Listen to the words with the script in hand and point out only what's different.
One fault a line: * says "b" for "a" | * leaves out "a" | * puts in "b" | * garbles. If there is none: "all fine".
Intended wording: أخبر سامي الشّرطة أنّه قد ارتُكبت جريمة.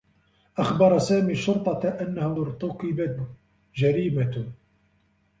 * leaves out "قد"